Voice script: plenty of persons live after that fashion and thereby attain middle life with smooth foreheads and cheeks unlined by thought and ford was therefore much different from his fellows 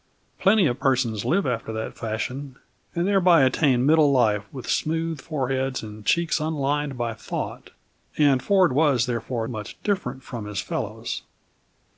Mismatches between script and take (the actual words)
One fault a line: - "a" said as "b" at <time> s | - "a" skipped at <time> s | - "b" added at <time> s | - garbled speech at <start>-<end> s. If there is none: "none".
none